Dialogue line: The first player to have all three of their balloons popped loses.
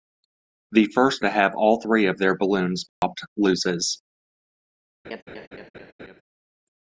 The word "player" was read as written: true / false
false